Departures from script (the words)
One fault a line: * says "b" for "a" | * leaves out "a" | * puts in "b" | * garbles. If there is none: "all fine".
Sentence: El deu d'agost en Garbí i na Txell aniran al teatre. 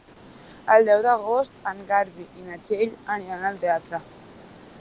all fine